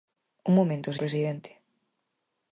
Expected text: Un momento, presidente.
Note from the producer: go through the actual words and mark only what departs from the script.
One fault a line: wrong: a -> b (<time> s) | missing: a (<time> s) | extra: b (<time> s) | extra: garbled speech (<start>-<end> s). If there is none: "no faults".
no faults